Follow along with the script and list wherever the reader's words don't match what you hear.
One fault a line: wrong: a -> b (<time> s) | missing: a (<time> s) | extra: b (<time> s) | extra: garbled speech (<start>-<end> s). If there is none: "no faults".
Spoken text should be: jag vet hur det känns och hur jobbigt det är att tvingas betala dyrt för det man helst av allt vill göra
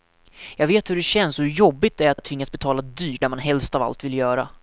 extra: att (2.2 s)
missing: för (3.2 s)